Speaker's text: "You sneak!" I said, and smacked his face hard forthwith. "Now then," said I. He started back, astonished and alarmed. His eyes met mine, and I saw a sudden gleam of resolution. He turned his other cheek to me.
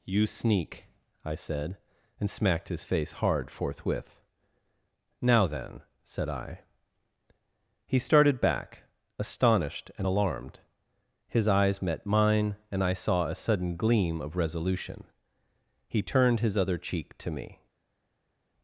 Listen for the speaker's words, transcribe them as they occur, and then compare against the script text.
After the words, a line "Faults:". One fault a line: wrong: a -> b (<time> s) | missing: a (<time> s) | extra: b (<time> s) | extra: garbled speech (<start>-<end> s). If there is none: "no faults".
"You sneak!" I said, and smacked his face hard forthwith. "Now then," said I. He started back, astonished and alarmed. His eyes met mine, and I saw a sudden gleam of resolution. He turned his other cheek to me.
Faults:
no faults